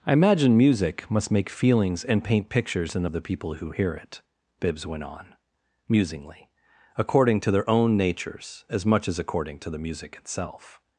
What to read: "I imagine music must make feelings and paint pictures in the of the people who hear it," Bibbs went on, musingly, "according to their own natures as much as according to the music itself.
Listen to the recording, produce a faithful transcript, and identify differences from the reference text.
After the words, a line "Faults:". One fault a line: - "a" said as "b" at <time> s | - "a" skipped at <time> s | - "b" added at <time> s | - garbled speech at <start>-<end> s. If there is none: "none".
"I imagine music must make feelings and paint pictures in the of the people who hear it," Bibbs went on, musingly, "according to their own natures as much as according to the music itself.
Faults:
none